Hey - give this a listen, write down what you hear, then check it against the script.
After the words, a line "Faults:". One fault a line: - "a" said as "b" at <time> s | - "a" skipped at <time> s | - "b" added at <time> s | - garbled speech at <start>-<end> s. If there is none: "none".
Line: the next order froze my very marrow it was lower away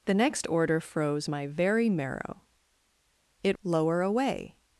the next order froze my very marrow it lower away
Faults:
- "was" skipped at 3.6 s